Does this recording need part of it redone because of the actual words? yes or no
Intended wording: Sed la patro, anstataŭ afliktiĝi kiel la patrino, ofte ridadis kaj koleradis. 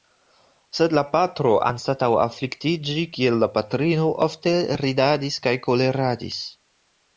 no